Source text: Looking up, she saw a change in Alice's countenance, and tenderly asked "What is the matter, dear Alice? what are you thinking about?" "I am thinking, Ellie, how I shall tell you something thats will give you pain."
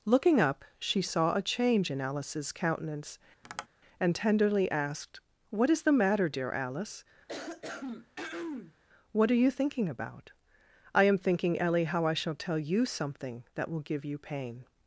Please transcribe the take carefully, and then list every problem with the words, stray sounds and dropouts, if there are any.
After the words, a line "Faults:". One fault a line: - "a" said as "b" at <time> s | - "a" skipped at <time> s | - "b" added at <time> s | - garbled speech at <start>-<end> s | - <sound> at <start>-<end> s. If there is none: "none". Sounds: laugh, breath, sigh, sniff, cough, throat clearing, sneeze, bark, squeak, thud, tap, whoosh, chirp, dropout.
Looking up, she saw a change in Alice's countenance, and tenderly asked "What is the matter, dear Alice? what are you thinking about?" "I am thinking, Ellie, how I shall tell you something that will give you pain."
Faults:
- tap at 3.4-3.7 s
- throat clearing at 7.3-8.7 s
- "thats" said as "that" at 13.5 s